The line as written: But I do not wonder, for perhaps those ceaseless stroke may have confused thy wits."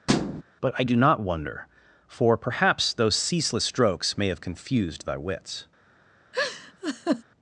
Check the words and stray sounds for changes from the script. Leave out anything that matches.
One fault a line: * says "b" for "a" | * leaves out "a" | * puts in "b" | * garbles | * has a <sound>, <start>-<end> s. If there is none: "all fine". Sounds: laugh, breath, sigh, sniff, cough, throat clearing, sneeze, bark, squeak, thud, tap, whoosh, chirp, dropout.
* has a thud, 0.1-0.4 s
* says "strokes" for "stroke"
* has a laugh, 6.3-7.2 s